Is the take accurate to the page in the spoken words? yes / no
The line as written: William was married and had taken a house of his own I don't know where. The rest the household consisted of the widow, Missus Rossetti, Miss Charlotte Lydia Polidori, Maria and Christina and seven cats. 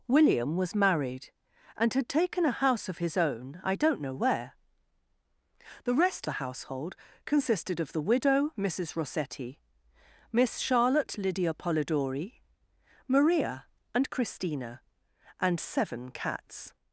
yes